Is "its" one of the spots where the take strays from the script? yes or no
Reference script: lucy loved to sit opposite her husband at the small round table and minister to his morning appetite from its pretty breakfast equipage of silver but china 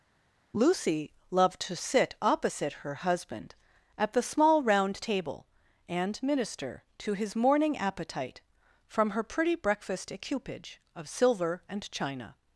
yes